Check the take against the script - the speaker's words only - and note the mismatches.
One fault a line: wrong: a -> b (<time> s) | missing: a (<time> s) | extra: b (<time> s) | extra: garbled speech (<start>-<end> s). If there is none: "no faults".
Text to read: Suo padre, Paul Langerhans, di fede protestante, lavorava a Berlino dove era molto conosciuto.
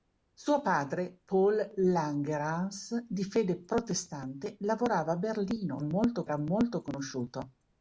wrong: dove -> molto (5.8 s)